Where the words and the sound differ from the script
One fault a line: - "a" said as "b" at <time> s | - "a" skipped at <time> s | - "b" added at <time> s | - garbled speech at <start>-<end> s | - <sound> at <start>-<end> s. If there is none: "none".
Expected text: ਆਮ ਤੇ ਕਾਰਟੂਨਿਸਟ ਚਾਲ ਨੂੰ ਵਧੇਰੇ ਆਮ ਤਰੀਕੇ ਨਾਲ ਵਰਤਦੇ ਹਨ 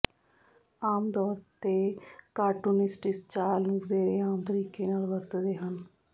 - "ਤੌਰ" added at 1.1 s
- "ਇਸ" added at 3.1 s